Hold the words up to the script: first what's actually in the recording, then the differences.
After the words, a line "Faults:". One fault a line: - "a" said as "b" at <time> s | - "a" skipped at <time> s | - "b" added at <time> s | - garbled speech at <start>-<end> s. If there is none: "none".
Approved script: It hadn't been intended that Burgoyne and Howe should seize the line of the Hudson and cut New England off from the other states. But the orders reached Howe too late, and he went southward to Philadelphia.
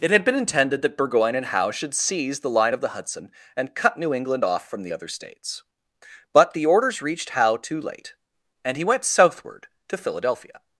It had been intended that Burgoyne and Howe should seize the line of the Hudson and cut New England off from the other states. But the orders reached Howe too late, and he went southward to Philadelphia.
Faults:
- "hadn't" said as "had" at 0.1 s